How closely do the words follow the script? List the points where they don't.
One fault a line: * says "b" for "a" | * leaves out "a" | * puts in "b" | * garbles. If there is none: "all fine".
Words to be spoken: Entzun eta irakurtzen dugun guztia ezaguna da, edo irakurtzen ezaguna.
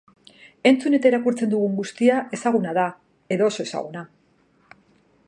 * says "oso" for "irakurtzen"